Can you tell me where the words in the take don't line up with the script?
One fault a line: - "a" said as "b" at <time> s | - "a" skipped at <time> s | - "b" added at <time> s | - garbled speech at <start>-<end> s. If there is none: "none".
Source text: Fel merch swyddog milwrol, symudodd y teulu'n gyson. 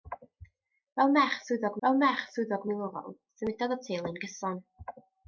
- "fel merch swyddog" added at 1.9 s